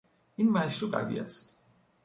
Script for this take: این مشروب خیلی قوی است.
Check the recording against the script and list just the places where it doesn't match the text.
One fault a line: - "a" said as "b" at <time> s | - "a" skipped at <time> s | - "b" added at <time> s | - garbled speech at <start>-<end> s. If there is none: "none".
- "خیلی" skipped at 0.9 s